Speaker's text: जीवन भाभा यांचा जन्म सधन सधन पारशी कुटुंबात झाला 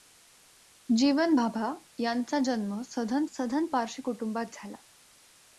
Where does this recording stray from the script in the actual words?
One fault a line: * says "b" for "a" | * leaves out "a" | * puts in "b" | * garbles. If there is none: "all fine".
all fine